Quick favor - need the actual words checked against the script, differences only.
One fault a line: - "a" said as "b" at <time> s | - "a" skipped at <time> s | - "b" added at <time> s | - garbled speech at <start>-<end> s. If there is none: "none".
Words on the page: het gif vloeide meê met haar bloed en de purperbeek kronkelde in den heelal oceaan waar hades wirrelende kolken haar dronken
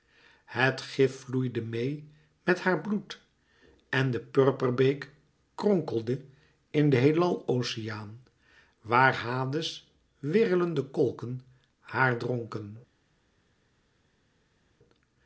none